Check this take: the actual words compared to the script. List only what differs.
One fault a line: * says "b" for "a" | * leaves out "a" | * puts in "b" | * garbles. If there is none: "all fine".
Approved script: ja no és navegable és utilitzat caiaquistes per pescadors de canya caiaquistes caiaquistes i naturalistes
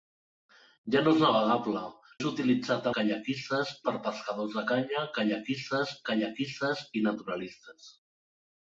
all fine